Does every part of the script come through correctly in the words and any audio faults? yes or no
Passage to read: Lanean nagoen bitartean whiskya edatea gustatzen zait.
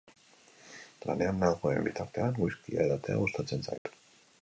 no